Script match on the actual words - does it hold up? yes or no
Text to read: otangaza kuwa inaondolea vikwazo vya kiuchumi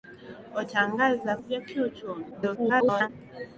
no